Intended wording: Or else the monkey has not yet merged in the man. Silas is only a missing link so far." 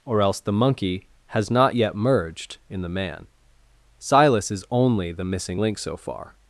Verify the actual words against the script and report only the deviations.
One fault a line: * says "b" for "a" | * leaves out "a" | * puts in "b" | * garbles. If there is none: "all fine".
* says "the" for "a"